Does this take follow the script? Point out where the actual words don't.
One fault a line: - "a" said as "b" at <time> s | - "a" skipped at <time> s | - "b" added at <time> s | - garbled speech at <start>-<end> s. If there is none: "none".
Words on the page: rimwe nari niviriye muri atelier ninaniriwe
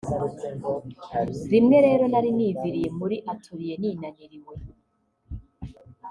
- "rero" added at 1.9 s